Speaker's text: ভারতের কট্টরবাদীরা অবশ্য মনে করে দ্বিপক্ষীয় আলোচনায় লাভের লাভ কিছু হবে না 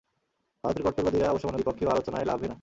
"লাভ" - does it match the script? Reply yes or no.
no